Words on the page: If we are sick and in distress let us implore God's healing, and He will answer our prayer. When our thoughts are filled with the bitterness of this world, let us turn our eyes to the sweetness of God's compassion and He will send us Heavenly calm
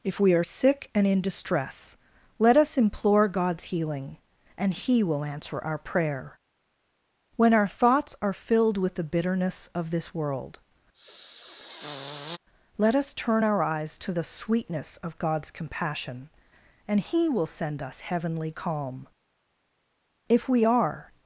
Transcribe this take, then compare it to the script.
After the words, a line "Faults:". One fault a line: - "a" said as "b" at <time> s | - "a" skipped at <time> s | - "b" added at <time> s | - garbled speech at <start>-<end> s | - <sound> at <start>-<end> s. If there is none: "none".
If we are sick and in distress let us implore God's healing, and He will answer our prayer. When our thoughts are filled with the bitterness of this world, let us turn our eyes to the sweetness of God's compassion and He will send us Heavenly calm If we are
Faults:
- sniff at 10.9-12.4 s
- "If we are" added at 20.3 s